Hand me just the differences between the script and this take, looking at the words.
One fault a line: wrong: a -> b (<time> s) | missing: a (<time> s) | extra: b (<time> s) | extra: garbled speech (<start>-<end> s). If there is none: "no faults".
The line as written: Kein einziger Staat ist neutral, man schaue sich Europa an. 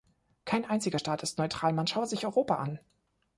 no faults